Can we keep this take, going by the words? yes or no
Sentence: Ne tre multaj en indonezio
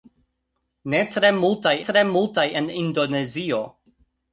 no